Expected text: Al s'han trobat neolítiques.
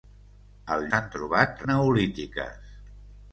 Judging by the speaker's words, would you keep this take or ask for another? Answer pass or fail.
pass